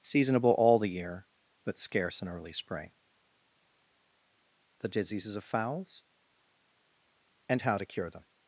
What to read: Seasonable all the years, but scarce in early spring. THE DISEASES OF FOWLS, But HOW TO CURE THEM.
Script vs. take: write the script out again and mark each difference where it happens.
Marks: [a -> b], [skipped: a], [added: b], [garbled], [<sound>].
Seasonable all the [years, -> year] but scarce in early spring. THE DISEASES OF FOWLS, [But -> AND] HOW TO CURE THEM.